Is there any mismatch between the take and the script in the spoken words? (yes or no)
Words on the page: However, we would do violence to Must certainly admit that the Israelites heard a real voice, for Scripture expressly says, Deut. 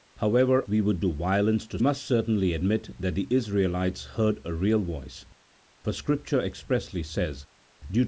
no